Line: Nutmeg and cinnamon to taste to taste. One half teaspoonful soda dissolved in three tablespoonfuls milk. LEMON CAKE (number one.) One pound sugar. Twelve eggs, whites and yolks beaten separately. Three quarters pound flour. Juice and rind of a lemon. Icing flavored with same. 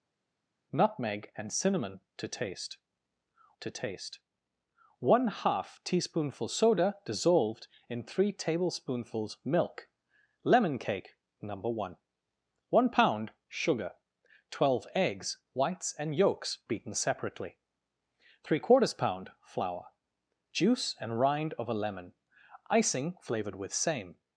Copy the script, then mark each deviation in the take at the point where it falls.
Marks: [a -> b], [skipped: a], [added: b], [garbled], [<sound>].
Nutmeg and cinnamon to taste to taste. One half teaspoonful soda dissolved in three tablespoonfuls milk. LEMON CAKE (number one.) One pound sugar. Twelve eggs, whites and yolks beaten separately. Three quarters pound flour. Juice and rind of a lemon. Icing flavored with same.